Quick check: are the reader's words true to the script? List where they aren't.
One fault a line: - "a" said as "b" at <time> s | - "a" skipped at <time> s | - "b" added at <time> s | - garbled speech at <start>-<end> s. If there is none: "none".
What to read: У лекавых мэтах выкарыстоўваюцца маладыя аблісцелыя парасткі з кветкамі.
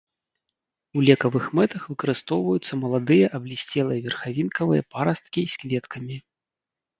- "верхавінкавыя" added at 4.1 s